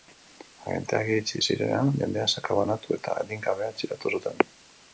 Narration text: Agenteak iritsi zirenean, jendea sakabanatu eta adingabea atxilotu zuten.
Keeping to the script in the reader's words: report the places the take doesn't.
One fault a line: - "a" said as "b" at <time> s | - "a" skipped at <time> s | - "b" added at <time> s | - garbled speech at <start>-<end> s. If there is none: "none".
none